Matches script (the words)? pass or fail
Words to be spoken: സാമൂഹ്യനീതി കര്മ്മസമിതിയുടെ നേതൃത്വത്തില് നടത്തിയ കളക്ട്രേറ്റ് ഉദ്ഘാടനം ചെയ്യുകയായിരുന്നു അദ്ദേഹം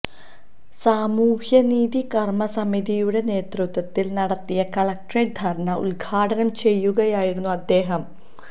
fail